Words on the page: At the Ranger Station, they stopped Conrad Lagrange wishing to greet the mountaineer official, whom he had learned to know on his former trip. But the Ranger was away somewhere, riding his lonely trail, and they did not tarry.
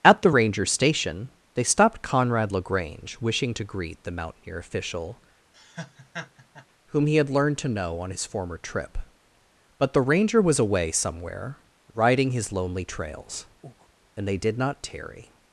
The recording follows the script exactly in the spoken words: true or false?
false